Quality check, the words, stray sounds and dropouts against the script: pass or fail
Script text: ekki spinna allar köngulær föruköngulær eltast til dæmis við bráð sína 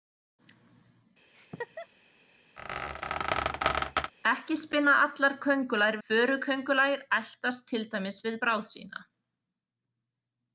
fail